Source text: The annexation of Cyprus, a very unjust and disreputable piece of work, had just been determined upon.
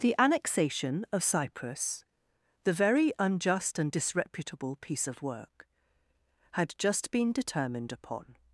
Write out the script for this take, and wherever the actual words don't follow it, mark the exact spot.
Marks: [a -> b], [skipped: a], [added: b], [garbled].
The annexation of Cyprus, [a -> the] very unjust and disreputable piece of work, had just been determined upon.